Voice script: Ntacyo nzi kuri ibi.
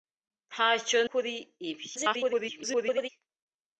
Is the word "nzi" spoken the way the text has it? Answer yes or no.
no